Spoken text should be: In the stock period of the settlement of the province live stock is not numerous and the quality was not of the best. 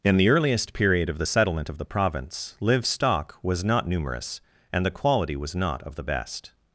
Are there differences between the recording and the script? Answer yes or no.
yes